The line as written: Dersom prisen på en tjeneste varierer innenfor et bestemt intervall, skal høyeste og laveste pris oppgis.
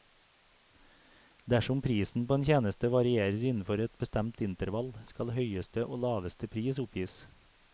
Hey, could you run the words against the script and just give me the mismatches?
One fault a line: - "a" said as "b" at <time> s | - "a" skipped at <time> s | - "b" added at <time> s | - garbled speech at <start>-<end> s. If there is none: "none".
none